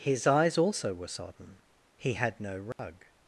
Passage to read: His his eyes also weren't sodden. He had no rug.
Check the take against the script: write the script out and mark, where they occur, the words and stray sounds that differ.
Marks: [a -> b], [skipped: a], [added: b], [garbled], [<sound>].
His [skipped: his] eyes also [weren't -> were] sodden. He had no rug. [dropout]